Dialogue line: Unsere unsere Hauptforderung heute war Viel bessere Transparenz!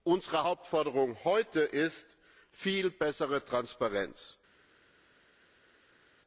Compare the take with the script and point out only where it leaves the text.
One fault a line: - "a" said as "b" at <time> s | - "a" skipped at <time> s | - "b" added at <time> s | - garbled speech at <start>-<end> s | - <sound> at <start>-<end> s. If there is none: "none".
- "unsere" skipped at 0.5 s
- "war" said as "ist" at 1.6 s